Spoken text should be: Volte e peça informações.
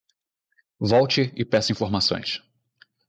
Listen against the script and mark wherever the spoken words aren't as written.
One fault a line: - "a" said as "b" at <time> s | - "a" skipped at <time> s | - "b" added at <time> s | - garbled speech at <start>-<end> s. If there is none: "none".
none